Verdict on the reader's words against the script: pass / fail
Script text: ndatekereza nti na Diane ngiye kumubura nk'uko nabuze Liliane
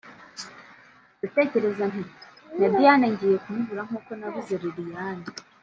pass